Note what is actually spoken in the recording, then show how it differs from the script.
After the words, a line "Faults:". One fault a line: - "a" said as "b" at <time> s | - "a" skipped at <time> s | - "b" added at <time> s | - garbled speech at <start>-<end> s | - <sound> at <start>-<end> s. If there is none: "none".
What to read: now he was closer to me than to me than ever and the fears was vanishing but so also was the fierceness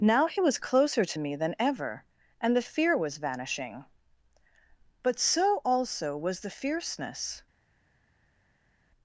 now he was closer to me than ever and the fear was vanishing but so also was the fierceness
Faults:
- "to me than" skipped at 1.5 s
- "fears" said as "fear" at 2.6 s